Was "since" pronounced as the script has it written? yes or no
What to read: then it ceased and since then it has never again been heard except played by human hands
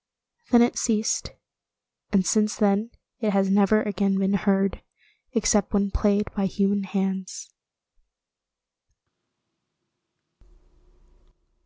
yes